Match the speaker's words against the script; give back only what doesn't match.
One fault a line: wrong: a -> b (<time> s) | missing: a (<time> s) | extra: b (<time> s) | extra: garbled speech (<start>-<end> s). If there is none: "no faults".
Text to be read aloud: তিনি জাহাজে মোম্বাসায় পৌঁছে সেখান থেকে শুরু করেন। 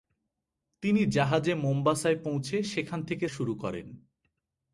no faults